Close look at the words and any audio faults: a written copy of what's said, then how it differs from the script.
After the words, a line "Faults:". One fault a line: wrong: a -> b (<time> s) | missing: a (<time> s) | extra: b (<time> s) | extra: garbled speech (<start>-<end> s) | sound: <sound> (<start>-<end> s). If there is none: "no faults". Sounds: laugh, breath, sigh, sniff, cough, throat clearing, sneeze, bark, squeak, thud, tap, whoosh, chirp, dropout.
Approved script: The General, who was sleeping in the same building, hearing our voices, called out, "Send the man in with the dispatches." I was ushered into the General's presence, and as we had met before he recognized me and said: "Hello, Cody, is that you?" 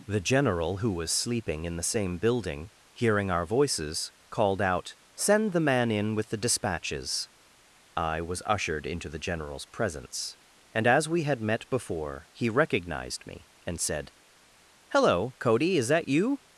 The General, who was sleeping in the same building, hearing our voices, called out, "Send the man in with the dispatches." I was ushered into the General's presence, and as we had met before he recognized me and said: "Hello, Cody, is that you?"
Faults:
no faults